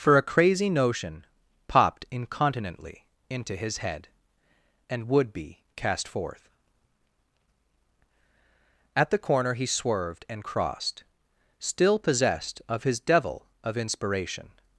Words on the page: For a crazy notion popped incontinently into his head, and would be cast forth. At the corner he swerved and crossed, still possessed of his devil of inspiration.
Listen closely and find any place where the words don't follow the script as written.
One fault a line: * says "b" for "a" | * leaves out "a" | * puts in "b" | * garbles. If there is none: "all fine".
all fine